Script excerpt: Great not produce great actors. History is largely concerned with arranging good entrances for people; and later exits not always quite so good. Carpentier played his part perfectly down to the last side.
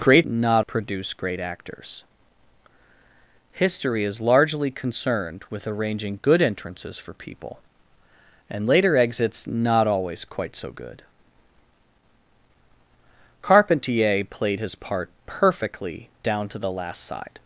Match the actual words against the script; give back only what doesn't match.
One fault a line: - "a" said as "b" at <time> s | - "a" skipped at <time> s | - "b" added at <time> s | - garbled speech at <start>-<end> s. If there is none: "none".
none